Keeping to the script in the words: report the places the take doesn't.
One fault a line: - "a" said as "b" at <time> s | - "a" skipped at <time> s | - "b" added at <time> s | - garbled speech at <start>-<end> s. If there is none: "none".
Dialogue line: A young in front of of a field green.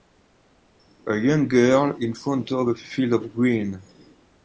- "girl" added at 1.5 s
- "of" skipped at 2.7 s
- "of" added at 3.1 s